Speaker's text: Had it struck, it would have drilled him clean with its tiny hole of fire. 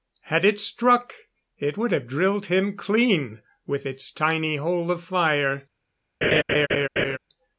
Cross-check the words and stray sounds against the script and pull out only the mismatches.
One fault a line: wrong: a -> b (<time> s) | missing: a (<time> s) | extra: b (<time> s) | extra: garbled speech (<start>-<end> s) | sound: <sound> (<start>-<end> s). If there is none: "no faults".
sound: laugh (6.2-7.2 s)